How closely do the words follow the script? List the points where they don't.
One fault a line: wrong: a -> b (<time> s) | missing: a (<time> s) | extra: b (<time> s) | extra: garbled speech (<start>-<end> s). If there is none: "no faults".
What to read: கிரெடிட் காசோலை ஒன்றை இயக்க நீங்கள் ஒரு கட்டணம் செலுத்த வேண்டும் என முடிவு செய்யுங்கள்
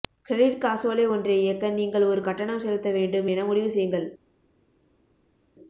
no faults